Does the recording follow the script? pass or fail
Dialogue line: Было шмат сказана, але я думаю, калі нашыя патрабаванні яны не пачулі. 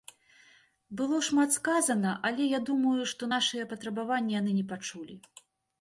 fail